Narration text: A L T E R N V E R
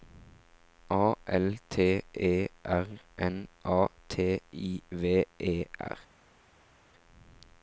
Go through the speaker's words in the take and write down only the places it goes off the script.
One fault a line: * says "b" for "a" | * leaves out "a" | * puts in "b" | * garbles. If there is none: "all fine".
* puts in "A T I"